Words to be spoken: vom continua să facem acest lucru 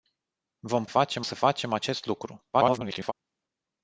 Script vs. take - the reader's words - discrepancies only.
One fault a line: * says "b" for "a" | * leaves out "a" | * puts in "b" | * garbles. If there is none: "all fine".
* says "facem" for "continua"
* garbles